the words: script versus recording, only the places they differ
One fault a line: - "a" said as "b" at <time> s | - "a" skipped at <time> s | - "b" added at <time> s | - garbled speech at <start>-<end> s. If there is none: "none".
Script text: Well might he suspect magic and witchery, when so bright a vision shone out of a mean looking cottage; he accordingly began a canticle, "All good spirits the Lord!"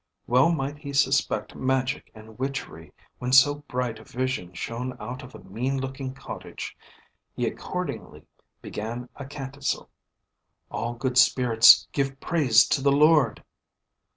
- "give praise to" added at 11.9 s